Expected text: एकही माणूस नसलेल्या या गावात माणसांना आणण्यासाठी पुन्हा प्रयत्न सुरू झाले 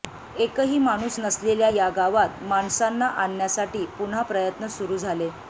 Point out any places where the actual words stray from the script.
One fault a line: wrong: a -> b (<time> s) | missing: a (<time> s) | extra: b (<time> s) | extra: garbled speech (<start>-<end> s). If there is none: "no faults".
no faults